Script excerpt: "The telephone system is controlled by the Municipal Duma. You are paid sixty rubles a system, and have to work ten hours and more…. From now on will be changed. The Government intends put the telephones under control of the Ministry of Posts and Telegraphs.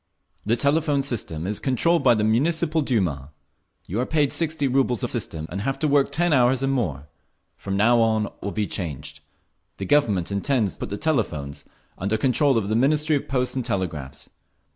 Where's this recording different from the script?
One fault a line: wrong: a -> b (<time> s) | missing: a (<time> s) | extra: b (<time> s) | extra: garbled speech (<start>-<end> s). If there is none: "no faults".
no faults